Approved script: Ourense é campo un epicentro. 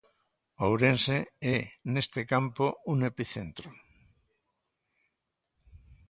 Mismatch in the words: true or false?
true